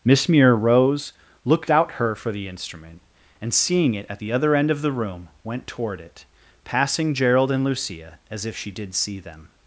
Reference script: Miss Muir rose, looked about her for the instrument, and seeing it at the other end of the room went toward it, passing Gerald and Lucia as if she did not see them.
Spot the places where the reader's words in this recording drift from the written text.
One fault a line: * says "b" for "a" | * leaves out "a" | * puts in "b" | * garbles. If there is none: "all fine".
* says "out" for "about"
* leaves out "not"